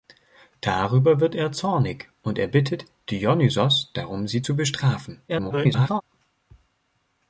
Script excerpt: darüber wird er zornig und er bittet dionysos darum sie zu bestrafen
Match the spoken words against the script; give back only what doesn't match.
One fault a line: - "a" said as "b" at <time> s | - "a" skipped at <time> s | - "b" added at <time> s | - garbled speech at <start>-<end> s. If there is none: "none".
- garbled speech at 5.3-6.0 s